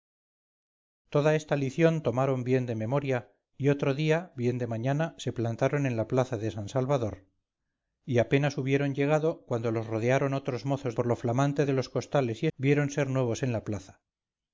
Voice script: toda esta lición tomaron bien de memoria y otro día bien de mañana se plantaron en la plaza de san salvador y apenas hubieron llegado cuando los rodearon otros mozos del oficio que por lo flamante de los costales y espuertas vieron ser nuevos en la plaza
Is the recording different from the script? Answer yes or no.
yes